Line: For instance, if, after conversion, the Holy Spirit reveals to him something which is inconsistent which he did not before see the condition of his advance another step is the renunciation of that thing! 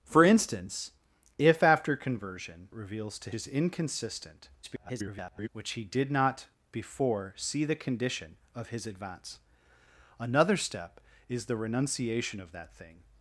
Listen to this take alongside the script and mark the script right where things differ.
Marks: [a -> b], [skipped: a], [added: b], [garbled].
For instance, if, after conversion, [skipped: the Holy Spirit] reveals to [skipped: him something which] is inconsistent [garbled] which he did not before see the condition of his advance another step is the renunciation of that thing!